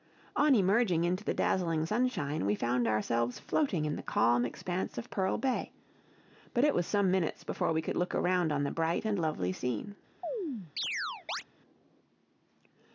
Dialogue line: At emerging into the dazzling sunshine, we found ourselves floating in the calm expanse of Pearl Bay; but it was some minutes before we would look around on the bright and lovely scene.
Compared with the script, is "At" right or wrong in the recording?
wrong